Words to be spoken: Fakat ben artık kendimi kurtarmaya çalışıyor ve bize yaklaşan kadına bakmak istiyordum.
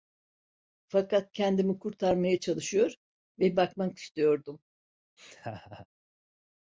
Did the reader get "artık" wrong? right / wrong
wrong